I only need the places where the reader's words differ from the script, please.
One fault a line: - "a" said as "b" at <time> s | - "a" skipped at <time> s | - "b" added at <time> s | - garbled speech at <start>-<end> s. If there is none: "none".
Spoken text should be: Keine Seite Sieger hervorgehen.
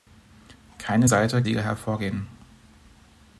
none